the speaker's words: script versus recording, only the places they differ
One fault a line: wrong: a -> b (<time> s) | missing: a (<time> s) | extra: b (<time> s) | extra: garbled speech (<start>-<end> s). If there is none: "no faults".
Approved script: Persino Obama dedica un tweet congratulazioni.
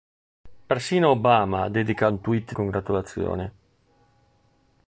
no faults